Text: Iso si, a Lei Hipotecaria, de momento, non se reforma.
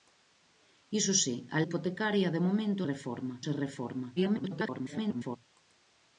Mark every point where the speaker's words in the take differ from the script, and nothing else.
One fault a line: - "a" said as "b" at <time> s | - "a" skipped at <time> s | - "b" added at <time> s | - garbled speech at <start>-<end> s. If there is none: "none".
- "Lei" skipped at 1.6 s
- "non" said as "reforma" at 2.9 s
- garbled speech at 4.2-5.4 s